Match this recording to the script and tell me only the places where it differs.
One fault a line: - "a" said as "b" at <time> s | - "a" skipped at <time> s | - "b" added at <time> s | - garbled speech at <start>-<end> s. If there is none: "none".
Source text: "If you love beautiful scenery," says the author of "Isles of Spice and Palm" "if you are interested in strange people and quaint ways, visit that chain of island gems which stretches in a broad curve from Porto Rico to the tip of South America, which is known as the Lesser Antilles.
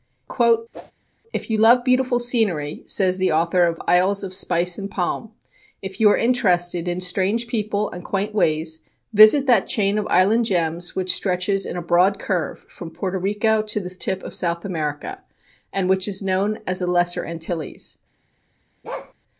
- "and" added at 15.7 s